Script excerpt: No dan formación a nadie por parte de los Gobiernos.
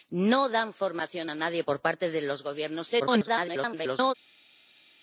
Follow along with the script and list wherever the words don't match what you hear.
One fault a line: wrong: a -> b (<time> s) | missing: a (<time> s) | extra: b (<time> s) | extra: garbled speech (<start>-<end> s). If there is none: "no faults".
extra: garbled speech (3.0-4.1 s)